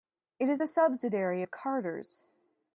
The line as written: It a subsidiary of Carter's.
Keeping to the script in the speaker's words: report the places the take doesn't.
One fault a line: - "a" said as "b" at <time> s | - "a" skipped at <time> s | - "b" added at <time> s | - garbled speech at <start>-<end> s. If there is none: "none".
- "is" added at 0.5 s